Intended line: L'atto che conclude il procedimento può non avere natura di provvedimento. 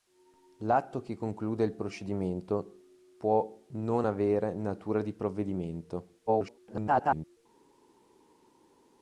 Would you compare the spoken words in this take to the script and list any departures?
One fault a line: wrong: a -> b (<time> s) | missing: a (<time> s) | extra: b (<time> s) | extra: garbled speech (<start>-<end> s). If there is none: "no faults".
extra: garbled speech (6.3-7.4 s)